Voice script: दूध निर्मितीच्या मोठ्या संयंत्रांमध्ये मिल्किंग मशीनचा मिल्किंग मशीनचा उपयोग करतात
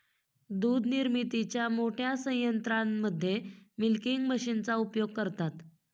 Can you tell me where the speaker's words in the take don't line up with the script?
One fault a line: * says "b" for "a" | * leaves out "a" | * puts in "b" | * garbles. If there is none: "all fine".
* leaves out "मिल्किंग मशीनचा"